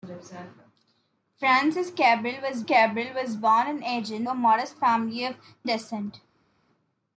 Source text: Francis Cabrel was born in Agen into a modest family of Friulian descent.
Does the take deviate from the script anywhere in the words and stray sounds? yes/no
yes